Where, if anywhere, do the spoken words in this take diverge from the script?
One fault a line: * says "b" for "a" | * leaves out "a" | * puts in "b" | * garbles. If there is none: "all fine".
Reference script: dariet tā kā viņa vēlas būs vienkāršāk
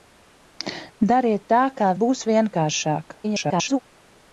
* leaves out "viņa vēlas"
* garbles